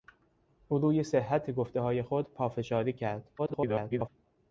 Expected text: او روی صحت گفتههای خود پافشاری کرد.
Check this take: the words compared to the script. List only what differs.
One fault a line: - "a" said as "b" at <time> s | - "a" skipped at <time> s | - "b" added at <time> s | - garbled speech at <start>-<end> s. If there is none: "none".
- garbled speech at 3.4-4.1 s